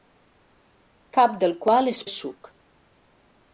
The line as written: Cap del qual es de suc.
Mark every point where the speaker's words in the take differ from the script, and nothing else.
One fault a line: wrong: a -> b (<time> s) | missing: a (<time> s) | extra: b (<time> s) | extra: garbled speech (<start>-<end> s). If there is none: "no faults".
no faults